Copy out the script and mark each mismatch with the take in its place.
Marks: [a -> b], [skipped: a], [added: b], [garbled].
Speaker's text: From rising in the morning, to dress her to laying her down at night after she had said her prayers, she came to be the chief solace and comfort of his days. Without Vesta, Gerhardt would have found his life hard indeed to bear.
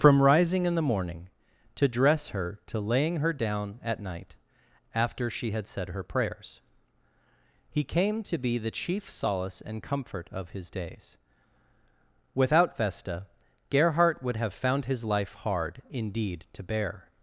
From rising in the morning, to dress her to laying her down at night after she had said her prayers, [she -> he] came to be the chief solace and comfort of his days. Without Vesta, Gerhardt would have found his life hard indeed to bear.